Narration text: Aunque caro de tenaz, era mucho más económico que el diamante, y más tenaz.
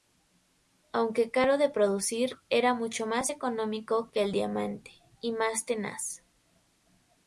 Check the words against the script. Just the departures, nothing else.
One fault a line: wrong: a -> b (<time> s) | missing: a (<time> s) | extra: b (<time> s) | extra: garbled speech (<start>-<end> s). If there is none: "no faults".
wrong: tenaz -> producir (1.7 s)